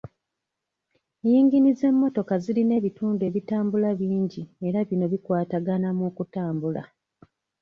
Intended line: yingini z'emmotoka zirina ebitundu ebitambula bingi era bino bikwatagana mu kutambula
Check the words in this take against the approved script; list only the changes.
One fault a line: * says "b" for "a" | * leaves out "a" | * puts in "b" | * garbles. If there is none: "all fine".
all fine